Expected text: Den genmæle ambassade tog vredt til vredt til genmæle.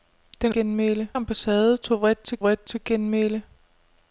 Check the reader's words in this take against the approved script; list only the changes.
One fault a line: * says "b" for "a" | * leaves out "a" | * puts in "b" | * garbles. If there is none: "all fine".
all fine